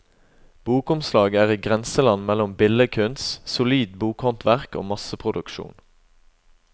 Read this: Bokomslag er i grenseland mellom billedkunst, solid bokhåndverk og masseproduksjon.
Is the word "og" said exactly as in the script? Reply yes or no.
yes